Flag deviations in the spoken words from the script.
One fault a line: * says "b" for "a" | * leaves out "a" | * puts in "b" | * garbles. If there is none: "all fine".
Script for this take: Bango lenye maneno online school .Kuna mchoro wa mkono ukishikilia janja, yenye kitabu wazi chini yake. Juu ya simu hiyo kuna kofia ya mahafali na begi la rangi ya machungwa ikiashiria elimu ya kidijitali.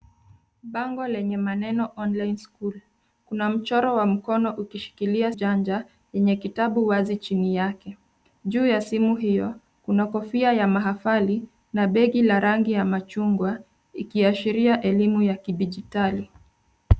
all fine